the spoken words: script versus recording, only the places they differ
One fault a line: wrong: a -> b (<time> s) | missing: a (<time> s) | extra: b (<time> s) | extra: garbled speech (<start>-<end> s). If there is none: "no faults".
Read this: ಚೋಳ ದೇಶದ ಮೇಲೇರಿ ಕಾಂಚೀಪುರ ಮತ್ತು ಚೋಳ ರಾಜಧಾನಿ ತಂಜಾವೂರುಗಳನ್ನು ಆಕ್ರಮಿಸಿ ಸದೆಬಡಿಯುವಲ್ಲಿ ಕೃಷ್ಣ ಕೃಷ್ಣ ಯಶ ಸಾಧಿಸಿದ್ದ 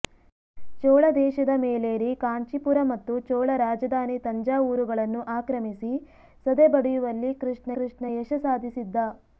no faults